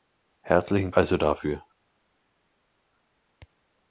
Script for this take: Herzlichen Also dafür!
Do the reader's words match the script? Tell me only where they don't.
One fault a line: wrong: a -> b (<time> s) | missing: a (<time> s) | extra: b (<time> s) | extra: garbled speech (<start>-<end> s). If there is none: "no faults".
no faults